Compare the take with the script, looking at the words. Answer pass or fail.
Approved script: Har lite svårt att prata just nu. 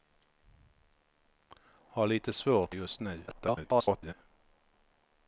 fail